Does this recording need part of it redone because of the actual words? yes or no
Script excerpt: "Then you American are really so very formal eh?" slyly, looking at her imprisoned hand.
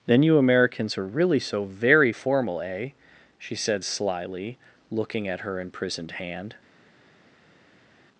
yes